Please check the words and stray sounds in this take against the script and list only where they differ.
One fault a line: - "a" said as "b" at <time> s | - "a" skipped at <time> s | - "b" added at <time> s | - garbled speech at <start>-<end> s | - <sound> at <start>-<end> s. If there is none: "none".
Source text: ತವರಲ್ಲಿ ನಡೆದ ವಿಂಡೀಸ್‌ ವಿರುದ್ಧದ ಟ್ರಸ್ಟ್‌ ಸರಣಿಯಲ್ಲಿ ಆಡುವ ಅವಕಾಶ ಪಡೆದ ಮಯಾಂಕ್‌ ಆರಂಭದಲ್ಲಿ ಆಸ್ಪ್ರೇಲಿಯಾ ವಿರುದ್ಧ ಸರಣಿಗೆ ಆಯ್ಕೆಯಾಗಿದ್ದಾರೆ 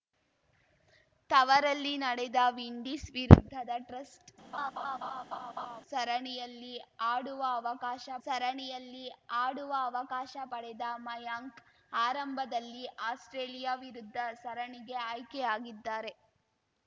- laugh at 4.5-5.8 s
- "ಸರಣಿಯಲ್ಲಿ ಆಡುವ ಅವಕಾಶ" added at 8.3 s